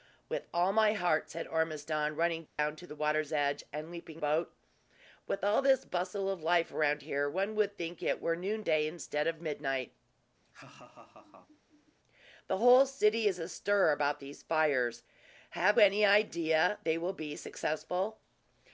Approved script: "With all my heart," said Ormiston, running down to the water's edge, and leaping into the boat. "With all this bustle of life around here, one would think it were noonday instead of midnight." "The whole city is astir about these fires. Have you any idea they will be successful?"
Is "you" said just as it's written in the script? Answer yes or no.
no